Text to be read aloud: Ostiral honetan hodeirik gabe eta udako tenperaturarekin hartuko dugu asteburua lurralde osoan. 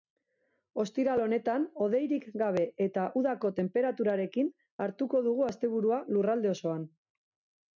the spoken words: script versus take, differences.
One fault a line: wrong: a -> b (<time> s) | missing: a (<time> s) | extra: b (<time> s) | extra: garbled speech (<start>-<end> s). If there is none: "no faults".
no faults